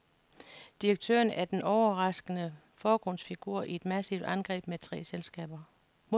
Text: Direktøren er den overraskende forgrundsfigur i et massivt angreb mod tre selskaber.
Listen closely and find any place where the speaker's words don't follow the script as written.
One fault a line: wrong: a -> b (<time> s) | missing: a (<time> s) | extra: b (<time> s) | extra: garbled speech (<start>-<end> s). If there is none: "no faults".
no faults